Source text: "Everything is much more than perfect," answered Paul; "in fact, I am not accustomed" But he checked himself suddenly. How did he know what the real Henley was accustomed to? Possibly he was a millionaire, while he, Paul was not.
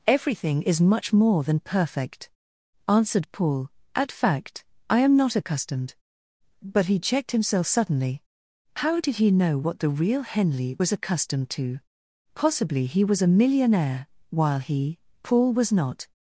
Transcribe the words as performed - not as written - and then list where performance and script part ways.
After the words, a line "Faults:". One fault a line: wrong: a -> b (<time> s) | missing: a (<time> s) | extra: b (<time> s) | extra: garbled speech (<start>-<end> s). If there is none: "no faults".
"Everything is much more than perfect," answered Paul; "at fact, I am not accustomed" But he checked himself suddenly. How did he know what the real Henley was accustomed to? Possibly he was a millionaire, while he, Paul was not.
Faults:
wrong: in -> at (4.0 s)